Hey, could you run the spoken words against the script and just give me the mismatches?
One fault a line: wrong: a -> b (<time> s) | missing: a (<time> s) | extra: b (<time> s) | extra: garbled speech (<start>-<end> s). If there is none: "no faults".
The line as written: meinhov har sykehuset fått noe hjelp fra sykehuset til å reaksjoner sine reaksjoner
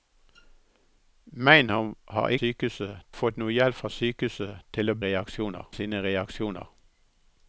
no faults